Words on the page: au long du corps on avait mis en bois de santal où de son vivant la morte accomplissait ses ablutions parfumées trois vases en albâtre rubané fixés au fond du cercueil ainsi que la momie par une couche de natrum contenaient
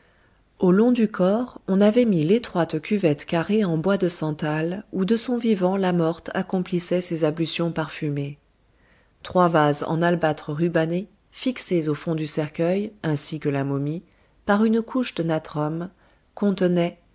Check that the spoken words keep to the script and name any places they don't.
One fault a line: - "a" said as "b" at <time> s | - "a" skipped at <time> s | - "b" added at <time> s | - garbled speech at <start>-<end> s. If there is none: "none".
- "l'étroite cuvette carrée" added at 2.2 s